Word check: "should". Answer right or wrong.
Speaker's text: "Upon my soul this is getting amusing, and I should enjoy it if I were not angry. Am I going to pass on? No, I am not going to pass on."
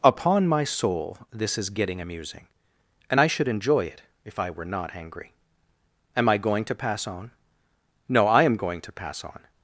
right